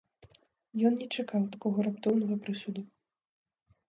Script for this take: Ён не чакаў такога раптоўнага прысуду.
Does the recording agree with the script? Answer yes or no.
yes